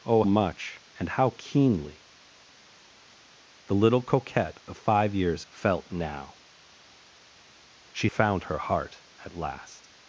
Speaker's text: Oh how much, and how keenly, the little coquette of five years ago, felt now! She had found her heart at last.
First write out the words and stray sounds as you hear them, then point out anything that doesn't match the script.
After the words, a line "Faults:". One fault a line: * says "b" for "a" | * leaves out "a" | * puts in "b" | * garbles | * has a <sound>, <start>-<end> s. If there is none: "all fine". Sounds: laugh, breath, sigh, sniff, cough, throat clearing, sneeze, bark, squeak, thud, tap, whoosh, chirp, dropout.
Oh much, and how keenly, the little coquette of five years felt now! She found her heart at last.
Faults:
* leaves out "how"
* leaves out "ago"
* leaves out "had"